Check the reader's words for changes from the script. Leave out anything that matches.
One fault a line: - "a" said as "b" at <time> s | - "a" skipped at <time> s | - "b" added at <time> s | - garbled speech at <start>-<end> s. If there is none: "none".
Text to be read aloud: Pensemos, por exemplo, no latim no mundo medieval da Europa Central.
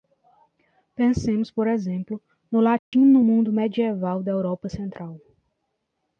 none